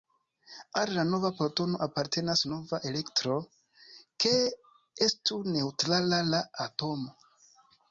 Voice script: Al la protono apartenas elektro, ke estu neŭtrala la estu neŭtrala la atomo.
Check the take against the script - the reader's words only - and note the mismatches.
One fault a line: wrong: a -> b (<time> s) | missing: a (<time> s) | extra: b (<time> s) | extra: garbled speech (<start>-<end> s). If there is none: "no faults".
extra: nova (1.1 s)
extra: nova (2.5 s)
missing: estu neŭtrala la (6.5 s)